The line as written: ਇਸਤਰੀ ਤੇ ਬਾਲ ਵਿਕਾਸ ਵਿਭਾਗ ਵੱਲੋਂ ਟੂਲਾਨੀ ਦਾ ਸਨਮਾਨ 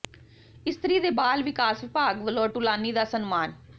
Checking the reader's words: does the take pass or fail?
pass